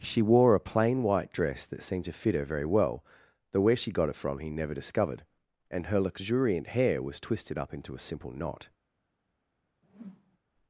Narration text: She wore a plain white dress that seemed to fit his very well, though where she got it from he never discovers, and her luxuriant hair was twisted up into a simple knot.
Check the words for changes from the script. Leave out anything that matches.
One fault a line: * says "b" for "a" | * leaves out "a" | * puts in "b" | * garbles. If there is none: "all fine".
* says "her" for "his"
* says "discovered" for "discovers"